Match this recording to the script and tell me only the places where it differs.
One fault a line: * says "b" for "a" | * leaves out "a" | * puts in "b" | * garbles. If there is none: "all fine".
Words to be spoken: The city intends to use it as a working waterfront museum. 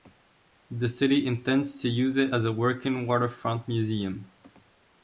all fine